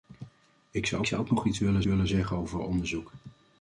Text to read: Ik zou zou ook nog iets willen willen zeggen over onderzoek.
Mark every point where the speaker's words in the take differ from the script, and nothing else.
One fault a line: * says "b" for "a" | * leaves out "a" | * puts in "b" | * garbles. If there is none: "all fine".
all fine